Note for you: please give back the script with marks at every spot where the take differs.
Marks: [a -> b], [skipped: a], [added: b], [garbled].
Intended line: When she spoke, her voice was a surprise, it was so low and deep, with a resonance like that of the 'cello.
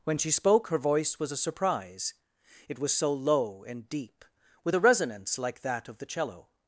When she spoke, her voice was a surprise, it was so low and deep, with a resonance like that of the 'cello.